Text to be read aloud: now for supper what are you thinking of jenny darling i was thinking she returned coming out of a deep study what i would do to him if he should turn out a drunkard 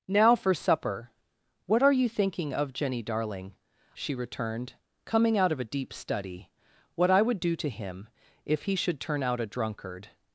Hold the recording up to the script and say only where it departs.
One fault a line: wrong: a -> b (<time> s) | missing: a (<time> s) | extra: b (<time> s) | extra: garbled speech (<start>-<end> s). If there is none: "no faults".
missing: i was thinking (3.5 s)